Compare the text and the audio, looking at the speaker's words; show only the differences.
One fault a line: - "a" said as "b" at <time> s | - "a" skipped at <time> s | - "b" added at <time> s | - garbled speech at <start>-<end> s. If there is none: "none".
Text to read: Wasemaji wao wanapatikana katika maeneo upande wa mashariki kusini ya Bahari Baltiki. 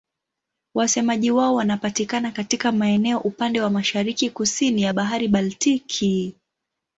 none